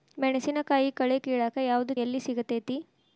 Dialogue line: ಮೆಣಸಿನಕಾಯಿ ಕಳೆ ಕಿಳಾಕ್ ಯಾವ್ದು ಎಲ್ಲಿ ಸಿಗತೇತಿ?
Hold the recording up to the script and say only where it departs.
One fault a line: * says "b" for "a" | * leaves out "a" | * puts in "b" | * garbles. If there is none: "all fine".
all fine